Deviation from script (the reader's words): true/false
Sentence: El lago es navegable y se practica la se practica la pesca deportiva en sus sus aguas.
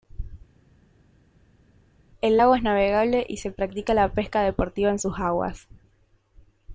true